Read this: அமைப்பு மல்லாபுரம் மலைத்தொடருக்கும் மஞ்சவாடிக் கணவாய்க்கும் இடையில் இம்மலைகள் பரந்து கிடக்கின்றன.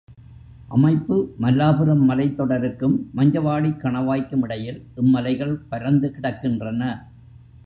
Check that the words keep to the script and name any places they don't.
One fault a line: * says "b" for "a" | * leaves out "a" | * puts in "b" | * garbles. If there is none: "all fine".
all fine